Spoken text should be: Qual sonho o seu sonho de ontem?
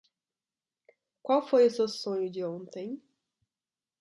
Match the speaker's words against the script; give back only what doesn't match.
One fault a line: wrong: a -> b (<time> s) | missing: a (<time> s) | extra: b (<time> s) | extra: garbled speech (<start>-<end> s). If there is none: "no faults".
wrong: sonho -> foi (1.4 s)